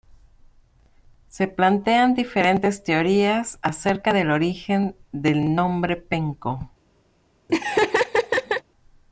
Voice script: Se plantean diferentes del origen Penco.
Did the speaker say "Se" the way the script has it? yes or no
yes